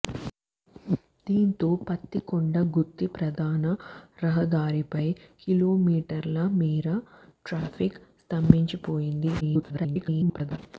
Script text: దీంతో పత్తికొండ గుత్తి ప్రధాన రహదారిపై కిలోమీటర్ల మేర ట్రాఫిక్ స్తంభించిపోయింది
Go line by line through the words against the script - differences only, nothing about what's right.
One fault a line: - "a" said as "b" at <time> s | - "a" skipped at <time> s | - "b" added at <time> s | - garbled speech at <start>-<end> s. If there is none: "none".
- garbled speech at 9.4-10.6 s